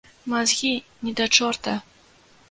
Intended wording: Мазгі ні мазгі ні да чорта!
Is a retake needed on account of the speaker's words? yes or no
yes